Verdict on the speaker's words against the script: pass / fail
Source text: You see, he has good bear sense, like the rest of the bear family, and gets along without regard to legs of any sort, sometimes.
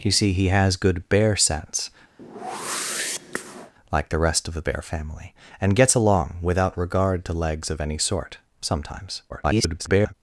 fail